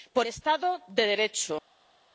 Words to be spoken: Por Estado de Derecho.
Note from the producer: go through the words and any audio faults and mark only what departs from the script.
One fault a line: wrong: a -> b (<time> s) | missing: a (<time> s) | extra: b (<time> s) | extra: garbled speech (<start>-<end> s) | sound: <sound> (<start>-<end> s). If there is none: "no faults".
no faults